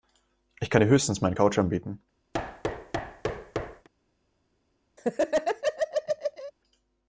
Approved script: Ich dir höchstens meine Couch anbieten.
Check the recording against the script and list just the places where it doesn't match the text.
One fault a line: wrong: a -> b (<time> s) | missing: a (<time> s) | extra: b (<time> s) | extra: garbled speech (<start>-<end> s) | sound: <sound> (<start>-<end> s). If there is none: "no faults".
extra: kann (0.7 s)
sound: thud (2.3-3.9 s)
sound: laugh (5.0-6.5 s)